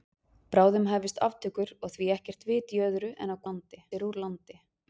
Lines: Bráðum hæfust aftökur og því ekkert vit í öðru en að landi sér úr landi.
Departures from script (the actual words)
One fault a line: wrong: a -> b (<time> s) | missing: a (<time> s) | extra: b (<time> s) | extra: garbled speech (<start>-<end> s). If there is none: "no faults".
no faults